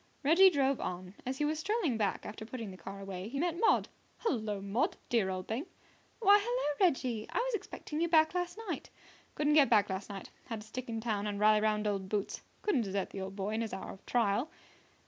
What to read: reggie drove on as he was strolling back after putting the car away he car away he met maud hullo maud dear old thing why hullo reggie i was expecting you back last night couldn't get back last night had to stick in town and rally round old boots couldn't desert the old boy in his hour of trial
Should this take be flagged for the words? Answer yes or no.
yes